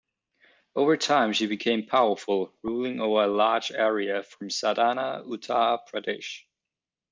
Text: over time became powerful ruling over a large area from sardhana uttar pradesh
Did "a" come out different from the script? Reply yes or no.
no